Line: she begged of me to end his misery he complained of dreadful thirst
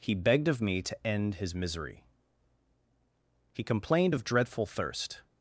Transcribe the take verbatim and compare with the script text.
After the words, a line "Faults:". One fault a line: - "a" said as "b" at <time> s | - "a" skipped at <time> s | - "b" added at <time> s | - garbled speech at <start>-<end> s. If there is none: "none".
he begged of me to end his misery he complained of dreadful thirst
Faults:
- "she" said as "he" at 0.0 s